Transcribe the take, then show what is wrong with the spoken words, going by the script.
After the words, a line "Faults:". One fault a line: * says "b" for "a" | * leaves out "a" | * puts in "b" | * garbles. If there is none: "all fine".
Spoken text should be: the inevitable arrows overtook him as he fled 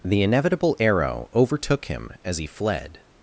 the inevitable arrow overtook him as he fled
Faults:
* says "arrow" for "arrows"